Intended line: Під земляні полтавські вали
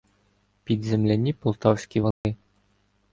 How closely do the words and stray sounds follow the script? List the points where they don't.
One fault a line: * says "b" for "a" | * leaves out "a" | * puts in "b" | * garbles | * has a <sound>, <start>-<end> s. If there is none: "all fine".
* has a dropout, 2.1-2.2 s